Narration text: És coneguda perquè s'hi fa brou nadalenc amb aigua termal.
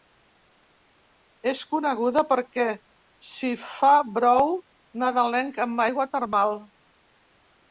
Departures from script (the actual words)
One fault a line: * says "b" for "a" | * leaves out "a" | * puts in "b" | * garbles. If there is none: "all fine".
all fine